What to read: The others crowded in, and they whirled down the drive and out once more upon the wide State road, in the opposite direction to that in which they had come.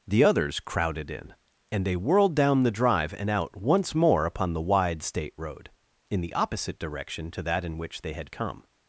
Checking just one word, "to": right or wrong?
right